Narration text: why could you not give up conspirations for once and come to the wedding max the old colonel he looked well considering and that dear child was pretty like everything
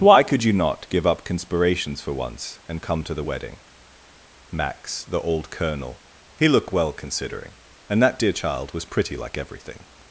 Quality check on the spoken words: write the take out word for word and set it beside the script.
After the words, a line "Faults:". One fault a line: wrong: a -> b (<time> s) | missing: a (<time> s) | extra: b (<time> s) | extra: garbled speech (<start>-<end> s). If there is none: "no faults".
why could you not give up conspirations for once and come to the wedding max the old colonel he looked well considering and that dear child was pretty like everything
Faults:
no faults